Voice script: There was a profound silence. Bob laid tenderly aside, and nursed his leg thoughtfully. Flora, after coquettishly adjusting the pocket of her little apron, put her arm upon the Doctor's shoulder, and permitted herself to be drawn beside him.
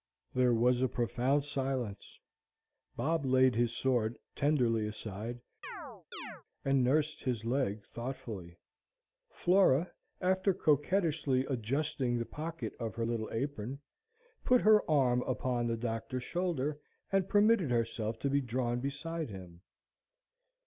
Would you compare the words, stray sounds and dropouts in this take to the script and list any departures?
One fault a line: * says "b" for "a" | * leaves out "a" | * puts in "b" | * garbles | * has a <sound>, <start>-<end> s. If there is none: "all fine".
* puts in "his sword"
* has a chirp, 5.6-6.4 s